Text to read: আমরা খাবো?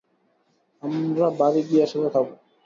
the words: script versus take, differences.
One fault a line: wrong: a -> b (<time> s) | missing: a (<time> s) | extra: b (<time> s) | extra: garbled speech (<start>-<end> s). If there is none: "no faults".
extra: বাড়ি গিয়ে একসাথে (1.4 s)